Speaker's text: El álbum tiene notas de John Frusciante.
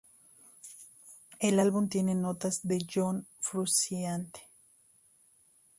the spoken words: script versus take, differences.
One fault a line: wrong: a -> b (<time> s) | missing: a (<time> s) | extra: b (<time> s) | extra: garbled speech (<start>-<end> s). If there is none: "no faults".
no faults